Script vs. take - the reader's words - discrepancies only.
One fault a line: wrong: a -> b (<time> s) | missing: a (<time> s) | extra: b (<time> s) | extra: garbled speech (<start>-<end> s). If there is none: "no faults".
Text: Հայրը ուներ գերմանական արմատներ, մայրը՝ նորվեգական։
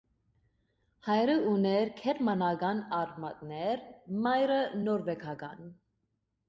no faults